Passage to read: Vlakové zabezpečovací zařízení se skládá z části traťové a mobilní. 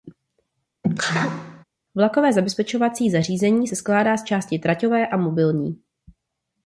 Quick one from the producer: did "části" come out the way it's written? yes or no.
yes